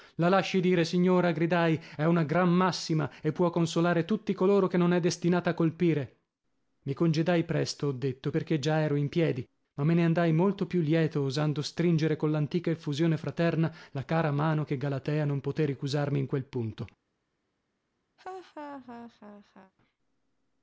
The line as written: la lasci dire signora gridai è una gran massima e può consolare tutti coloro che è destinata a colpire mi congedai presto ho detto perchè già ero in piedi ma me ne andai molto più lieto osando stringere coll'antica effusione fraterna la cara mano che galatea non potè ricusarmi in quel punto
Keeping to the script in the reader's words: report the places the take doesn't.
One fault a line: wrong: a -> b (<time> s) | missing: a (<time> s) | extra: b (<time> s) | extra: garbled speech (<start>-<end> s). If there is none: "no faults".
extra: non (4.8 s)